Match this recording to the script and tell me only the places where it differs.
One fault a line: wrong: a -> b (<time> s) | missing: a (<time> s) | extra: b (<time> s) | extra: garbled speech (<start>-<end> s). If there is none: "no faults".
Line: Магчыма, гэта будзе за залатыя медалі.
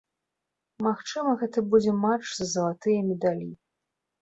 extra: матч (2.1 s)